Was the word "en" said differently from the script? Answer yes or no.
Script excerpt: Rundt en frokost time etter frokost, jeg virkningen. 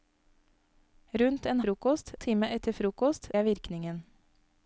no